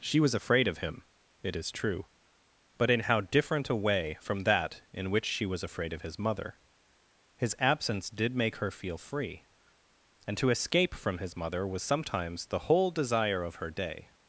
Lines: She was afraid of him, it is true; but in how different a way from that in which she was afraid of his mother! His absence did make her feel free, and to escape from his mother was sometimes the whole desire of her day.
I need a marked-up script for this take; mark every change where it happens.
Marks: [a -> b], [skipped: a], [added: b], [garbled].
She was afraid of him, it is true; but in how different a way from that in which she was afraid of his mother! His absence did make her feel free, and to escape from his mother was sometimes the whole desire of her day.